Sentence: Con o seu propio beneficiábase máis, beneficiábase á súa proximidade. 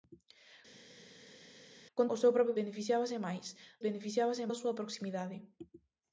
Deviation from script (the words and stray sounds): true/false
false